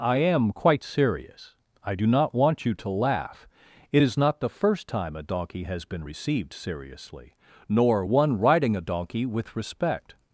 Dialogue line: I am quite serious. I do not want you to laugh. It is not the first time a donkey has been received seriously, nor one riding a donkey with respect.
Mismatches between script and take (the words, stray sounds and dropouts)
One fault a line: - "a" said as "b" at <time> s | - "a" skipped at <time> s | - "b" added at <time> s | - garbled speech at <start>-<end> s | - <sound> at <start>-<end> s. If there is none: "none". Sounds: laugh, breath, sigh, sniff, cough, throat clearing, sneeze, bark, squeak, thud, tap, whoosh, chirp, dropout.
none